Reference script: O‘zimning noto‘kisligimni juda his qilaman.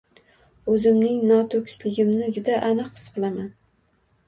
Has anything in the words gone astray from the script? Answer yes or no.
yes